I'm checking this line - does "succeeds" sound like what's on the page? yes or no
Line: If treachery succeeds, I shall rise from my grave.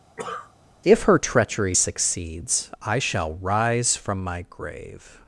yes